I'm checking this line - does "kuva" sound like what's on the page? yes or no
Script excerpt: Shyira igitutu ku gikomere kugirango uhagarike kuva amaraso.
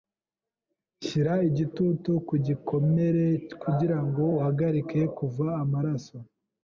yes